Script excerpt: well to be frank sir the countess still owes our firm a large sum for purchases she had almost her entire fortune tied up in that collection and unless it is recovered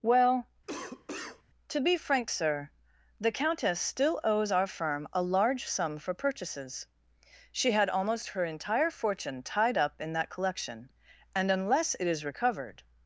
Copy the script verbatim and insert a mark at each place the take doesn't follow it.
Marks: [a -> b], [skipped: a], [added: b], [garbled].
well to be frank sir the countess still owes our firm a large sum for purchases she had almost her entire fortune tied up in that collection and unless it is recovered